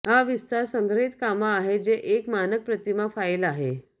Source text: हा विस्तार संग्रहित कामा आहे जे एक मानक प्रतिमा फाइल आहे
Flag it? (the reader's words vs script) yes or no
no